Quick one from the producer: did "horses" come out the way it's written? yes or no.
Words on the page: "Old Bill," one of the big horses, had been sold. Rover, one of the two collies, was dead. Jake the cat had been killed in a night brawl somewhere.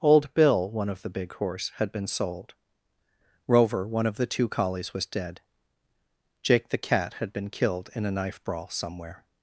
no